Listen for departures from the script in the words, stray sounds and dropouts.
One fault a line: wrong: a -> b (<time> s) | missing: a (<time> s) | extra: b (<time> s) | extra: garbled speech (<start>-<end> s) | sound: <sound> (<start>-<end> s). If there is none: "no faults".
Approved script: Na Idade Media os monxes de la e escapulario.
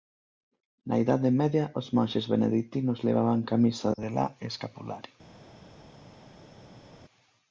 extra: beneditinos levaban camisa (2.3 s)